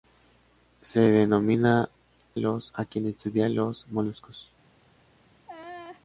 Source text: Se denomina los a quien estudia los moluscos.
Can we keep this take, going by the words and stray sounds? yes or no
no